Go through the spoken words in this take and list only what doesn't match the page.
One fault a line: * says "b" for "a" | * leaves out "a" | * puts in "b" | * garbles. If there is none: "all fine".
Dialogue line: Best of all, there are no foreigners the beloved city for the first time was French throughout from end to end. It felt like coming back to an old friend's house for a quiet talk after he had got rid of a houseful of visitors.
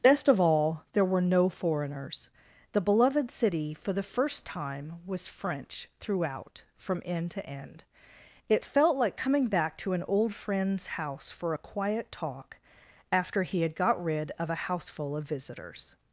* says "were" for "are"